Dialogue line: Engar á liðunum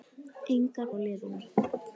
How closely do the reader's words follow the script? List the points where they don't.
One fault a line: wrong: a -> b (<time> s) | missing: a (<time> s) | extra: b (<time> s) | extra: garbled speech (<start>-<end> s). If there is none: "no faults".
no faults